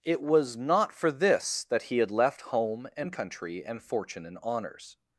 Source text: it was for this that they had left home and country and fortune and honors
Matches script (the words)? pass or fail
fail